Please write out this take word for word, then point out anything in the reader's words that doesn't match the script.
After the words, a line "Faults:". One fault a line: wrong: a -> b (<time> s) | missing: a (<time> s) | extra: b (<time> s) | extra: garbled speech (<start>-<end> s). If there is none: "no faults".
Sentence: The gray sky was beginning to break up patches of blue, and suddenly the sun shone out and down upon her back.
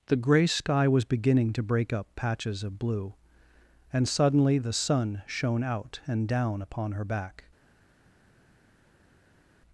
The gray sky was beginning to break up patches of blue, and suddenly the sun shone out and down upon her back.
Faults:
no faults